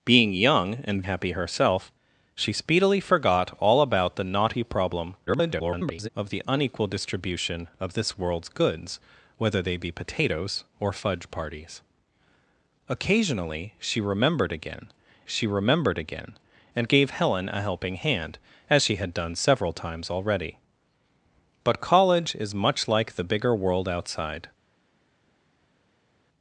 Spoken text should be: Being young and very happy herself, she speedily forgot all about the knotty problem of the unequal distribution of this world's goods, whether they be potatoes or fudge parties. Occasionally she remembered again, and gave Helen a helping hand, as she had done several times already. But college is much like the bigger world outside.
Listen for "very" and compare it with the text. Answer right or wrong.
wrong